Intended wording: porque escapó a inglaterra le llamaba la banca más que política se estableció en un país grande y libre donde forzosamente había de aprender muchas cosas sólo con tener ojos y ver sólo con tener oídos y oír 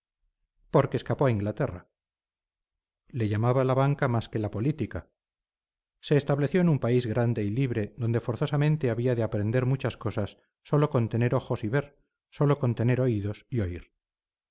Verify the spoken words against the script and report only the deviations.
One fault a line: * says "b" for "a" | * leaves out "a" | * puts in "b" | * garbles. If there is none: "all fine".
* puts in "la"